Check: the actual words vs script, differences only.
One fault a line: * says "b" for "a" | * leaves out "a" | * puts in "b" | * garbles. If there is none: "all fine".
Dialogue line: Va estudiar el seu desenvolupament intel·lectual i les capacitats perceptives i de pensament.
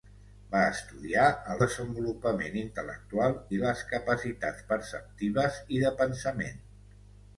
* leaves out "seu"